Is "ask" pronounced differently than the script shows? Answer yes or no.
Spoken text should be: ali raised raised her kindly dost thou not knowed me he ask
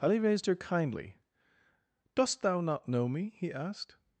yes